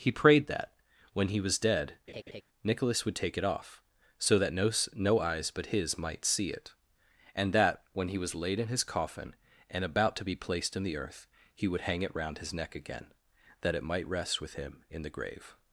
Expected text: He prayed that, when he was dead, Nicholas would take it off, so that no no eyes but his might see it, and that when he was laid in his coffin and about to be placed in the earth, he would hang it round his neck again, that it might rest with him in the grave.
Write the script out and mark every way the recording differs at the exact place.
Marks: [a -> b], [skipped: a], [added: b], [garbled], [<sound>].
He prayed that, when he was dead, [laugh] Nicholas would take it off, so that no no eyes but his might see it, and that when he was laid in his coffin and about to be placed in the earth, he would hang it round his neck again, that it might rest with him in the grave.